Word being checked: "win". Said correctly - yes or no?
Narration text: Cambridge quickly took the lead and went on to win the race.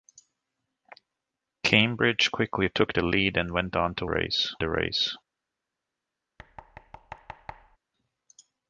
no